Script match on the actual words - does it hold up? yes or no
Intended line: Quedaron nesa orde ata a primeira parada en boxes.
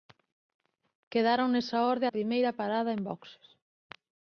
no